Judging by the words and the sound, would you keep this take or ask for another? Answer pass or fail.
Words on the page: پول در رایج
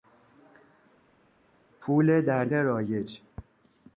pass